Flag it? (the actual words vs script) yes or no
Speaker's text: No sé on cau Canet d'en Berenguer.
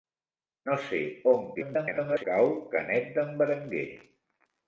yes